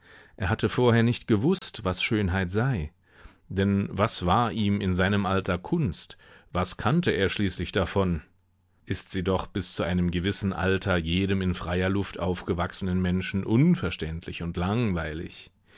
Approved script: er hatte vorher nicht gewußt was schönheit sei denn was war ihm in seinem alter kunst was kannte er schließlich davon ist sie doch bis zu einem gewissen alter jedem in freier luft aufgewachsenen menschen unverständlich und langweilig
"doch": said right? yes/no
yes